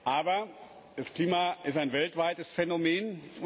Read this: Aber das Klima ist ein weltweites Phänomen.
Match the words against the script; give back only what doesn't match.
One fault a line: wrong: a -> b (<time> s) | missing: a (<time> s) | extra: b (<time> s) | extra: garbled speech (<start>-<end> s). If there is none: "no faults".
no faults